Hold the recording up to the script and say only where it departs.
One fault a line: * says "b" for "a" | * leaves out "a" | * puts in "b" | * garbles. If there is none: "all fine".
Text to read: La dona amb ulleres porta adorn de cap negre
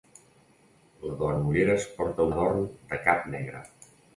all fine